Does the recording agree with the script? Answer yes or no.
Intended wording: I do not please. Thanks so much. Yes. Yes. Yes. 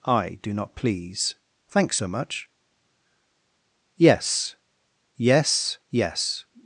yes